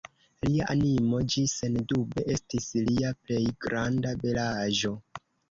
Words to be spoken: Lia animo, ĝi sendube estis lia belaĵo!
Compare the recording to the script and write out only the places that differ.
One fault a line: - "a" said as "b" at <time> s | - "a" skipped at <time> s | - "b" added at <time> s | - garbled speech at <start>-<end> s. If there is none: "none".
- "plej granda" added at 3.2 s